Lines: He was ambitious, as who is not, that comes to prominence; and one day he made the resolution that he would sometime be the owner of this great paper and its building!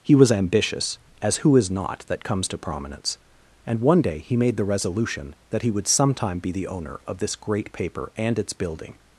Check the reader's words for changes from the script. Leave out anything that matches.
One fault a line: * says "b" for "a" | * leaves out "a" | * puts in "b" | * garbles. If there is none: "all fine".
all fine